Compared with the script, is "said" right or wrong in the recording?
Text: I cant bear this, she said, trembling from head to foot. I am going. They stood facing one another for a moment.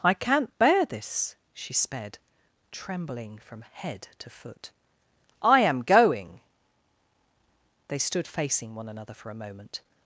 wrong